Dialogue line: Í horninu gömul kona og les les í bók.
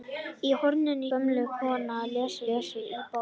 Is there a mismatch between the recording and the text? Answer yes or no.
no